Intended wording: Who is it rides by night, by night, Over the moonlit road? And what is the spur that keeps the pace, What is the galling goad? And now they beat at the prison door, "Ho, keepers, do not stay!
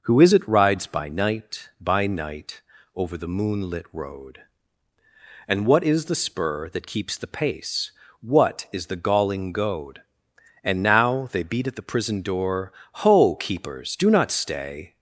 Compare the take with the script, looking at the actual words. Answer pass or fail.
pass